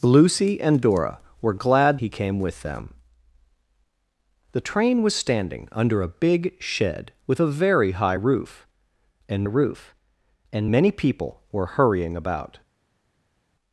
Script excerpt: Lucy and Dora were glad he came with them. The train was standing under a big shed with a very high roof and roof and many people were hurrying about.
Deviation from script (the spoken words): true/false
false